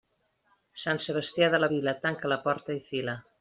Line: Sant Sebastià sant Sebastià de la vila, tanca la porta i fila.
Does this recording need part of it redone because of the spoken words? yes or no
yes